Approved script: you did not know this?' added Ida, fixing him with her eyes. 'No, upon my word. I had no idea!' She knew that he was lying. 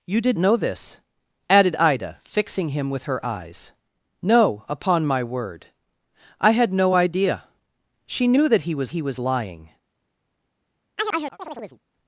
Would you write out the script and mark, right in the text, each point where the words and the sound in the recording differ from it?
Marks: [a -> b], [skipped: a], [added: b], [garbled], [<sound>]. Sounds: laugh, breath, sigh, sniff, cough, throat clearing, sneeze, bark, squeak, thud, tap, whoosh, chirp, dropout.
you did [skipped: not] know this?' added Ida, fixing him with her eyes. 'No, upon my word. I had no idea!' She knew that he was [added: he was] lying. [chirp]